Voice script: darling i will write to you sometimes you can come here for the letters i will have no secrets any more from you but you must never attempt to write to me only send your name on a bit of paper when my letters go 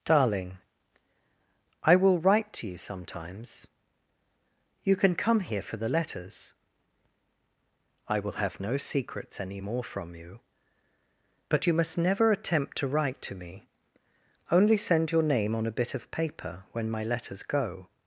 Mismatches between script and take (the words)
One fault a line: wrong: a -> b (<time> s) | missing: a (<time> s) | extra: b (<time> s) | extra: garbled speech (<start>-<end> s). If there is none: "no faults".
no faults